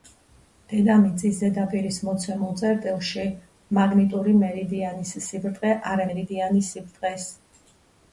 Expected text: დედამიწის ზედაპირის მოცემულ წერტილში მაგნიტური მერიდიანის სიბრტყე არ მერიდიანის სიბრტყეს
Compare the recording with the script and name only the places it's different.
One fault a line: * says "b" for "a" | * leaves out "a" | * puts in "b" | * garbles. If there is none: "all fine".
all fine